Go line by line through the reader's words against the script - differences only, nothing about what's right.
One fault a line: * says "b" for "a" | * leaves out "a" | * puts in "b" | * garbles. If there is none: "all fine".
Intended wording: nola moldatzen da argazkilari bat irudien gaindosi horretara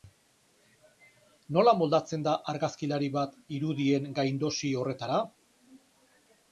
all fine